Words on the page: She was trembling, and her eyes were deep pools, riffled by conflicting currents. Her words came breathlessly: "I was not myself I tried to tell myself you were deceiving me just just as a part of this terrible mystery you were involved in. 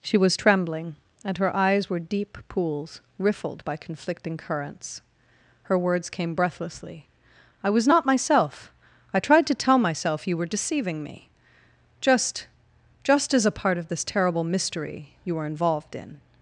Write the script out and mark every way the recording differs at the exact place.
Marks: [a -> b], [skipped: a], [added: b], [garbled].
She was trembling, and her eyes were deep pools, riffled by conflicting currents. Her words came breathlessly: "I was not myself I tried to tell myself you were deceiving me just just as a part of this terrible mystery you were involved in.